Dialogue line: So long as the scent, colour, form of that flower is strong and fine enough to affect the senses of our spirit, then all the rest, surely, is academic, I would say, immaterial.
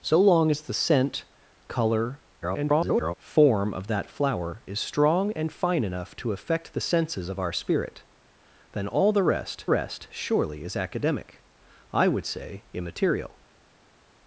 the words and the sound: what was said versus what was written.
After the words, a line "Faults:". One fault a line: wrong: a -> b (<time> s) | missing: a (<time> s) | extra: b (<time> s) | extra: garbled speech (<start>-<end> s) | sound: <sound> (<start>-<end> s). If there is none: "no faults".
So long as the scent, colour, [garbled] form of that flower is strong and fine enough to affect the senses of our spirit, then all the rest rest, surely, is academic, I would say, immaterial.
Faults:
extra: garbled speech (2.4-3.1 s)
extra: rest (9.7 s)